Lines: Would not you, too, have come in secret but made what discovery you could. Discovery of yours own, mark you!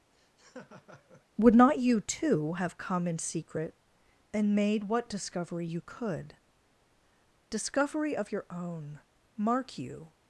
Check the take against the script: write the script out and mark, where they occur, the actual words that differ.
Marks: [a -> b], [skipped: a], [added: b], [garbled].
Would not you, too, have come in secret [but -> and] made what discovery you could. Discovery of [yours -> your] own, mark you!